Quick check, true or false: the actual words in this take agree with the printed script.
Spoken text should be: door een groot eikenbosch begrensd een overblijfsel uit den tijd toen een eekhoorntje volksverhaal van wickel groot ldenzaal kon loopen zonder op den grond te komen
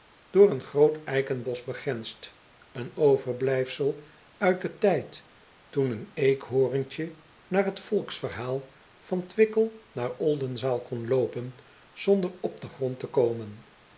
false